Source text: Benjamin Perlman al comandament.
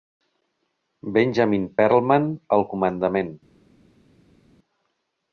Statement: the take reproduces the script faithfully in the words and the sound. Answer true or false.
true